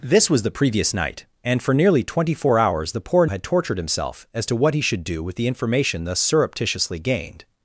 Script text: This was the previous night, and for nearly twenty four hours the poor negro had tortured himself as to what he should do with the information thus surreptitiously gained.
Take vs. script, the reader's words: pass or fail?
fail